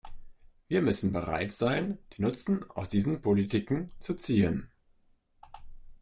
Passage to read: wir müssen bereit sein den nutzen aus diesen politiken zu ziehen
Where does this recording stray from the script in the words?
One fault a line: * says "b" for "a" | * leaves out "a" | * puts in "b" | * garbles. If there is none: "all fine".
all fine